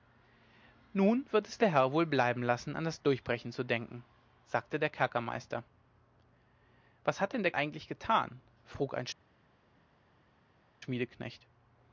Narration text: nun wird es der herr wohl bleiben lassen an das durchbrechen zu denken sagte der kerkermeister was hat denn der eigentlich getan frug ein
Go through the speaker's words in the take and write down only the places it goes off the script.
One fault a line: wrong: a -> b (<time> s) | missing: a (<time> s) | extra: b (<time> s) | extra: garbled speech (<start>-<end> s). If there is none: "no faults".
no faults